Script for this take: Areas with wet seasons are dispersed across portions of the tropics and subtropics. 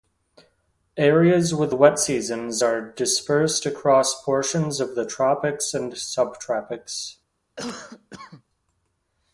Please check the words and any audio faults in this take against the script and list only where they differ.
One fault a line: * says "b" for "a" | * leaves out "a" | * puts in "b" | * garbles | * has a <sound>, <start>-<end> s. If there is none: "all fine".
* has a cough, 7.6-8.4 s